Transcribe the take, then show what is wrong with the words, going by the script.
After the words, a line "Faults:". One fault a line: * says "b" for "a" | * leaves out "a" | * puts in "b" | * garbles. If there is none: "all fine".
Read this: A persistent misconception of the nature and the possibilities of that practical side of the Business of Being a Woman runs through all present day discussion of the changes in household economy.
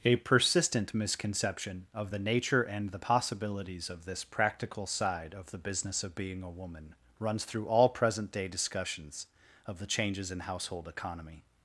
A persistent misconception of the nature and the possibilities of this practical side of the Business of Being a Woman runs through all present day discussions of the changes in household economy.
Faults:
* says "this" for "that"
* says "discussions" for "discussion"